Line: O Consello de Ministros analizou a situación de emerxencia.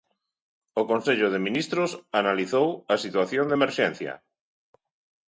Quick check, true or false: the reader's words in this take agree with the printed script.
true